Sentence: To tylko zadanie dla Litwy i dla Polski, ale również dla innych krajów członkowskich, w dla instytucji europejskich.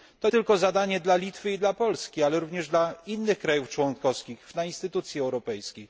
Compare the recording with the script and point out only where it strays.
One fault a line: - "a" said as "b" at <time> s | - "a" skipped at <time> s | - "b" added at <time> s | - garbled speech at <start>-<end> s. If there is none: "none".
none